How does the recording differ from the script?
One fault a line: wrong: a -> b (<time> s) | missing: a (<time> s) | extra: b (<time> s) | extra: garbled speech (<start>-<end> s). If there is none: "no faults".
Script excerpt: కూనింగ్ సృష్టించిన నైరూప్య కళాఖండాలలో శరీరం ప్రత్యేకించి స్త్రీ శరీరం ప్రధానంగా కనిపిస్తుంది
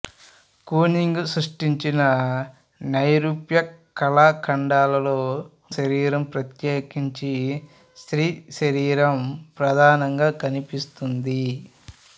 no faults